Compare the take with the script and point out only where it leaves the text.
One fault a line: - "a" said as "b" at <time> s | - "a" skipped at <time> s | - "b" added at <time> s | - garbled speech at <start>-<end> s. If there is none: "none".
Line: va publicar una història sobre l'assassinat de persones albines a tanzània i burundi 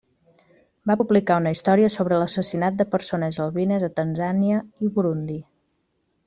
none